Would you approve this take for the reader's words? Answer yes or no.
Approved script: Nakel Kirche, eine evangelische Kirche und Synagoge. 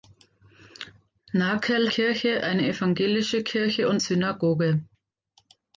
yes